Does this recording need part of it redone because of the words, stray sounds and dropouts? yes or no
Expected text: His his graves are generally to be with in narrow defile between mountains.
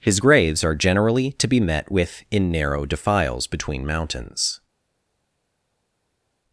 yes